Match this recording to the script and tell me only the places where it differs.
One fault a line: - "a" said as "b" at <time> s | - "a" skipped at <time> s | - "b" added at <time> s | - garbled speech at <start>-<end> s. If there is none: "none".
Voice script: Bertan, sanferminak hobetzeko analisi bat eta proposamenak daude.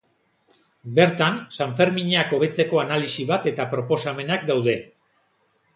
none